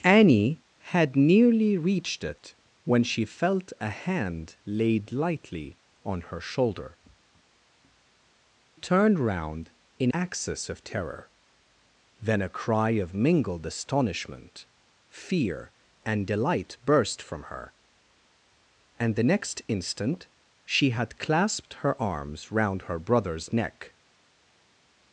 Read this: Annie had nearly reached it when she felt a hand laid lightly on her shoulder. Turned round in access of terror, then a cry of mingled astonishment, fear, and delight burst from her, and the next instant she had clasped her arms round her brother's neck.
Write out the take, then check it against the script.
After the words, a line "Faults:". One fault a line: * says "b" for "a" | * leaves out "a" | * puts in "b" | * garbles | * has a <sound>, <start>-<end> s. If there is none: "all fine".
Annie had nearly reached it when she felt a hand laid lightly on her shoulder. Turned round in access of terror, then a cry of mingled astonishment, fear, and delight burst from her, and the next instant she had clasped her arms round her brother's neck.
Faults:
all fine